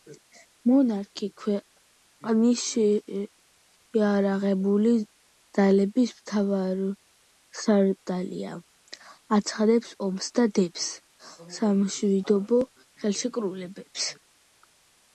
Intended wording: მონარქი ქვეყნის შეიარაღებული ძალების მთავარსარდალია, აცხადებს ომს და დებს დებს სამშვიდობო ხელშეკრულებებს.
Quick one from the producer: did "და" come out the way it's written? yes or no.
yes